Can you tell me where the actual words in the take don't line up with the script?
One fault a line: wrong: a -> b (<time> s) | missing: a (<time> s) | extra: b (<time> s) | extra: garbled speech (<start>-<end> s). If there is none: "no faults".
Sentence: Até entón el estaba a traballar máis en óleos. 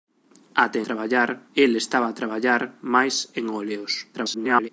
wrong: entón -> traballar (0.8 s)
extra: garbled speech (4.1-4.7 s)